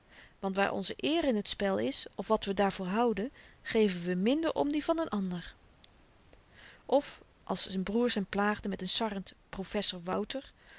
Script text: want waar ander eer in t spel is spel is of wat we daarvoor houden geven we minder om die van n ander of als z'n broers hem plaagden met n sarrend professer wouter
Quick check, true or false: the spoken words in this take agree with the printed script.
false